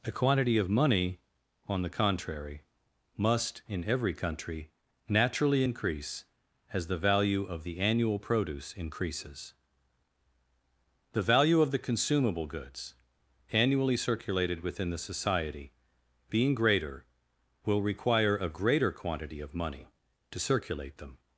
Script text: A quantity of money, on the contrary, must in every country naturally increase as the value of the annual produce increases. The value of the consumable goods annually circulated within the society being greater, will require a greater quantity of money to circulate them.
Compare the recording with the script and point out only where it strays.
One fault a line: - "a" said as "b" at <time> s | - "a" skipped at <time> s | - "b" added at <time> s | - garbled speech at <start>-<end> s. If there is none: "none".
none